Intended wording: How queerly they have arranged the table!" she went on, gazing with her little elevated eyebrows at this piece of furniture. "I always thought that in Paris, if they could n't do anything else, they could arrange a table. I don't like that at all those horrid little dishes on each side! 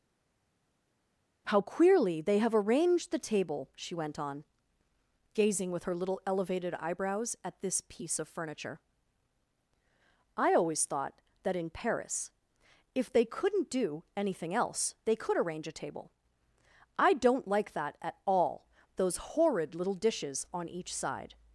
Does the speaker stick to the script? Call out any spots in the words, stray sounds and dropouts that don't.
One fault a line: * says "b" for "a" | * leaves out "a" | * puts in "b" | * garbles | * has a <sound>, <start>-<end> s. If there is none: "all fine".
all fine